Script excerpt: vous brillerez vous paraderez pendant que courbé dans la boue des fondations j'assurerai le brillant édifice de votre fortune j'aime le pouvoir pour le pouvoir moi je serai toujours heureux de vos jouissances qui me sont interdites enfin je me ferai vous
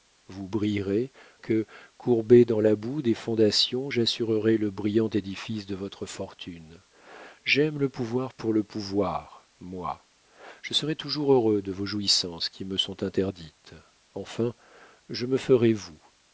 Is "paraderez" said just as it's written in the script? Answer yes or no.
no